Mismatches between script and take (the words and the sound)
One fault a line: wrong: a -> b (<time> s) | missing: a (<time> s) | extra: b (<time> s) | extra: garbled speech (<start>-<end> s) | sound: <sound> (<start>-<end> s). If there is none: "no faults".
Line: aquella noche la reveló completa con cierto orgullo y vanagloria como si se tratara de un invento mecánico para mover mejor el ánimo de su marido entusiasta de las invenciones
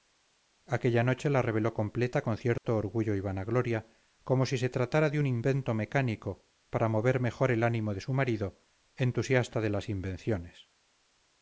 sound: dropout (2.6-2.6 s)